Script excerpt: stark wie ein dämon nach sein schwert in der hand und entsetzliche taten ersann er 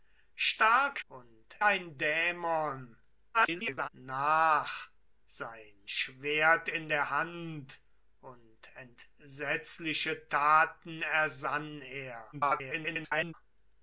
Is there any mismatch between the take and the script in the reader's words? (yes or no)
yes